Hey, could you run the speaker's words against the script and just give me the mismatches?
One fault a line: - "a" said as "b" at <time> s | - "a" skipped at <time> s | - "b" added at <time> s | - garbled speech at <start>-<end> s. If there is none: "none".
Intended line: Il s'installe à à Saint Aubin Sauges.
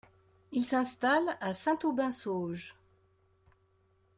- "à" skipped at 1.5 s